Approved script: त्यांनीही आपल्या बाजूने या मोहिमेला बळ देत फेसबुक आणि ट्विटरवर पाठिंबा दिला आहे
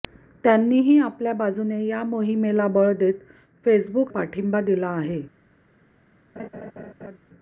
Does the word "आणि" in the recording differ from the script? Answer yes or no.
yes